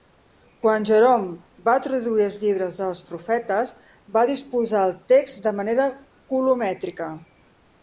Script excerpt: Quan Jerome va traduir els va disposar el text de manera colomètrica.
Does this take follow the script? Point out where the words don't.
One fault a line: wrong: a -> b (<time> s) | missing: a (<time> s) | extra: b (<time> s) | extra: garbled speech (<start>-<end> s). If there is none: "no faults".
extra: llibres dels profetes (2.5 s)